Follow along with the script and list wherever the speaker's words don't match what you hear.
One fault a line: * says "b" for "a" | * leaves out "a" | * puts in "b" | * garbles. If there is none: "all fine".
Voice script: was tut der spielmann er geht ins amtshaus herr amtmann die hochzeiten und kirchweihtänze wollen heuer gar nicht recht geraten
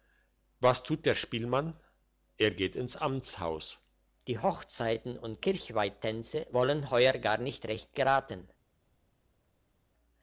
* leaves out "herr amtmann"